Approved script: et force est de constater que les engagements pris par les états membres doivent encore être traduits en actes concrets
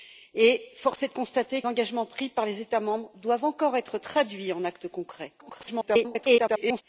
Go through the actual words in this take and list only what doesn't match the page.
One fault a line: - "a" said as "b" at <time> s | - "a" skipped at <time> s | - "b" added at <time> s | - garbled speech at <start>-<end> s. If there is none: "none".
- "que les" skipped at 1.6 s
- garbled speech at 5.4-6.8 s